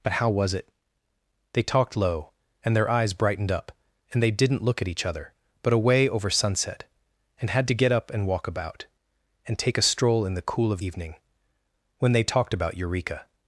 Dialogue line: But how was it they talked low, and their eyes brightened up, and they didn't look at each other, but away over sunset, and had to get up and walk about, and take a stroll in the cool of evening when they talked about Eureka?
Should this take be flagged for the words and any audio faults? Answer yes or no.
no